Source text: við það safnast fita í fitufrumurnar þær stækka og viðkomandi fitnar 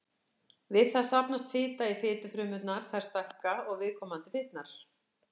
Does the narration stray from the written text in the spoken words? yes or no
no